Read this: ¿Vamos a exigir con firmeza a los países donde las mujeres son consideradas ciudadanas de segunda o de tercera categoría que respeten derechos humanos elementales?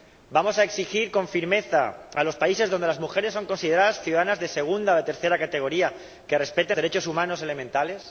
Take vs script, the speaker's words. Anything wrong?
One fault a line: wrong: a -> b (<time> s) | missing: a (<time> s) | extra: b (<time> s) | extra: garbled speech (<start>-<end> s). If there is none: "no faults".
no faults